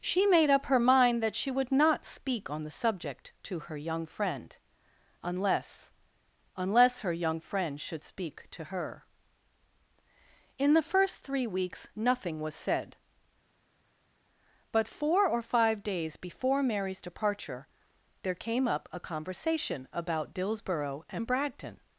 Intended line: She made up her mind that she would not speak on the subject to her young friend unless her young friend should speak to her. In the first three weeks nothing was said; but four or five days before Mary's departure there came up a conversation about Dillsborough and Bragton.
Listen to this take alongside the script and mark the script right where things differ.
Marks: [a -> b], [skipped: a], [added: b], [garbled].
She made up her mind that she would not speak on the subject to her young friend unless [added: unless] her young friend should speak to her. In the first three weeks nothing was said; but four or five days before Mary's departure there came up a conversation about Dillsborough and Bragton.